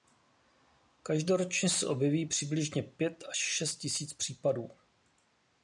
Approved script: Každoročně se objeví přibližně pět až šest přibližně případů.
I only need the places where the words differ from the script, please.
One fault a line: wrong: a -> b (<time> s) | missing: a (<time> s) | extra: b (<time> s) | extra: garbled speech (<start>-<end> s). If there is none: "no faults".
wrong: přibližně -> tisíc (3.8 s)